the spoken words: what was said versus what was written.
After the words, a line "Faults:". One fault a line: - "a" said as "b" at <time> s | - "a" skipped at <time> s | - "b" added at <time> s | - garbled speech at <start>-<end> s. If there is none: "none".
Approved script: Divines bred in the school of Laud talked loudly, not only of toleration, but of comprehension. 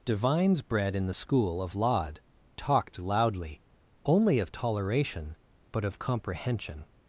Divines bred in the school of Laud talked loudly, only of toleration, but of comprehension.
Faults:
- "not" skipped at 3.6 s